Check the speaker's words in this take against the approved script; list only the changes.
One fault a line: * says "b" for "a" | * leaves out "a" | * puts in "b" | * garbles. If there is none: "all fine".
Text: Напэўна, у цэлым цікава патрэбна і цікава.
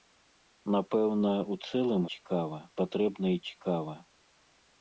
all fine